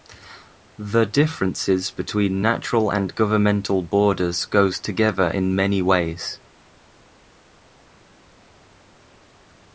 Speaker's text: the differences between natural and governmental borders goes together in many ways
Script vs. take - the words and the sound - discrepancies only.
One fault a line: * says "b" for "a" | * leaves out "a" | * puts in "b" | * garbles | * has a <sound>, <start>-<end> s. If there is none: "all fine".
all fine